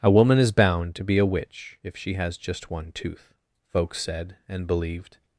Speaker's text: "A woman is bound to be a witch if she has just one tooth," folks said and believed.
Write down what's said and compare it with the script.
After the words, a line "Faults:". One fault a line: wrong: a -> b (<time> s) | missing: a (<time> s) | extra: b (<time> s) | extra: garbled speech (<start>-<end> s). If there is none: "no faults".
"A woman is bound to be a witch if she has just one tooth," folks said and believed.
Faults:
no faults